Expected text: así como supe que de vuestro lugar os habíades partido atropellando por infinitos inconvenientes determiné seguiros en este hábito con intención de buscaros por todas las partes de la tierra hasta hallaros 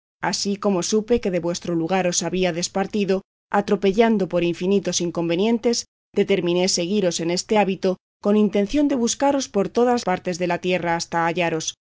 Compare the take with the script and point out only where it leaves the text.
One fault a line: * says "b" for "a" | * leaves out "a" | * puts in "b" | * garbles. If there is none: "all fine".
* leaves out "las"